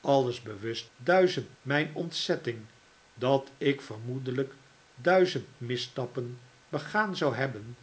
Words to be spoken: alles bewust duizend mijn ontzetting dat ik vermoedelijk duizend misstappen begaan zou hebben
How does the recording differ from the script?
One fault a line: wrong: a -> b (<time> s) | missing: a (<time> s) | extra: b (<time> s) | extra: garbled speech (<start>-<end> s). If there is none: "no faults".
no faults